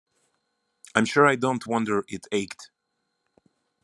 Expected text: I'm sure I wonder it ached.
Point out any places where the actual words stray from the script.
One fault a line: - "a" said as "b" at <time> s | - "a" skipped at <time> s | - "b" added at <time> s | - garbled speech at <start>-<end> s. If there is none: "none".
- "don't" added at 1.4 s